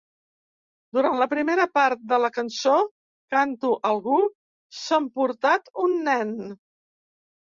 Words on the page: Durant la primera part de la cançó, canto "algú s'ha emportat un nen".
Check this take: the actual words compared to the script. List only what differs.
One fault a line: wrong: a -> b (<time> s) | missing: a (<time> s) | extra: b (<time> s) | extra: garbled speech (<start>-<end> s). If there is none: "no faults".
no faults